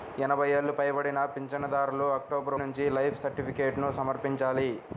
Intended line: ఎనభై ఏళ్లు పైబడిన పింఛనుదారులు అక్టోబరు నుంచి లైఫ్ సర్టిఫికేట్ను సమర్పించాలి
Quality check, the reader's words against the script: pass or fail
pass